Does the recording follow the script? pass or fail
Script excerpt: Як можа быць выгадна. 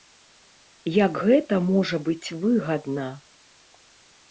fail